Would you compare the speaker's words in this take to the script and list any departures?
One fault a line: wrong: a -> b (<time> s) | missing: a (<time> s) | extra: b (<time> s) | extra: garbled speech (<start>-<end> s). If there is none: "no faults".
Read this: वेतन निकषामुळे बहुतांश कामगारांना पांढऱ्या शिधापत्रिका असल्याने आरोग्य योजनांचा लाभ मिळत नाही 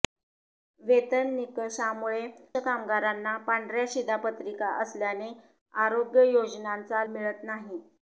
missing: बहुतांश (2.2 s)
missing: लाभ (7.0 s)